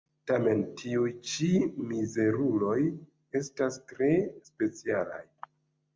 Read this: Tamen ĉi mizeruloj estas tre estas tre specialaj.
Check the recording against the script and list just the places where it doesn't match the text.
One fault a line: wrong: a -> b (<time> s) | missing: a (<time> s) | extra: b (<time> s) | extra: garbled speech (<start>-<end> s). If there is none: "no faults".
extra: tiuj (0.8 s)
missing: estas tre (4.1 s)